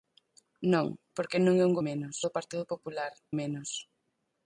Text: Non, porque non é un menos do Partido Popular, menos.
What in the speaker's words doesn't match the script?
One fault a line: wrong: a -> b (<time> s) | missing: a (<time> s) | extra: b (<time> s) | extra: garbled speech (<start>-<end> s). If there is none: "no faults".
no faults